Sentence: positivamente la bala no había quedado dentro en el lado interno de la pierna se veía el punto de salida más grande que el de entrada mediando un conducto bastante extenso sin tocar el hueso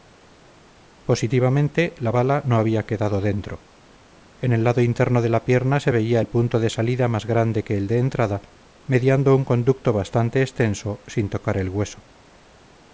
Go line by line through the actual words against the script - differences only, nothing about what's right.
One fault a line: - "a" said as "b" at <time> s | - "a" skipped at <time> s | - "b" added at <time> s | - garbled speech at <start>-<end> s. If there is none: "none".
none